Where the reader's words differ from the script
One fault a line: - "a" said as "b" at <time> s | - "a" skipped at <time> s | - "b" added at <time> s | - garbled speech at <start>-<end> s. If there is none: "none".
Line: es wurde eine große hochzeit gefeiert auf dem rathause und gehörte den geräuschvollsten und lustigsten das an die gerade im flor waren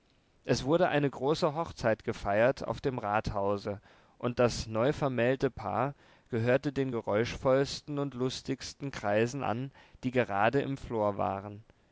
- "das neuvermählte paar" added at 4.4 s
- "das" said as "kreisen" at 8.9 s